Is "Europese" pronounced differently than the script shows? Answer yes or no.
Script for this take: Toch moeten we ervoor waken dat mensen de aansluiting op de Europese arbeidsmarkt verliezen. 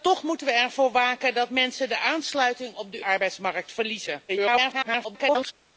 yes